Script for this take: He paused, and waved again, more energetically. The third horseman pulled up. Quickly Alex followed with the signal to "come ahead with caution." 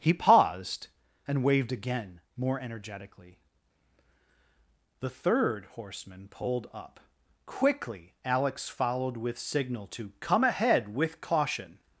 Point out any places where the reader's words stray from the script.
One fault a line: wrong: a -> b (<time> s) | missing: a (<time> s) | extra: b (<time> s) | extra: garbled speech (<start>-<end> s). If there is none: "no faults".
missing: the (9.4 s)